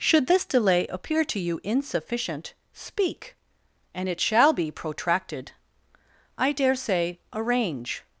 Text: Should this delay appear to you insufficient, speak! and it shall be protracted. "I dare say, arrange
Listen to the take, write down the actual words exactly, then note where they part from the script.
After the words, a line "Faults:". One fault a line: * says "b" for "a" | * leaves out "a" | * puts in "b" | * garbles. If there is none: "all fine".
Should this delay appear to you insufficient, speak! and it shall be protracted. "I dare say, arrange
Faults:
all fine